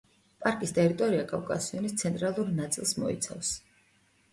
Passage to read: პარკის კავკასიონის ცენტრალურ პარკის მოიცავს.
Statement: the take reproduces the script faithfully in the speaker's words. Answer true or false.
false